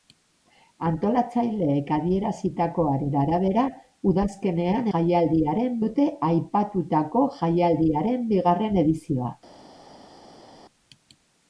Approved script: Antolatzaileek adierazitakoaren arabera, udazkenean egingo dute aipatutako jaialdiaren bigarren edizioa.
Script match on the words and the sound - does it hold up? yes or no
no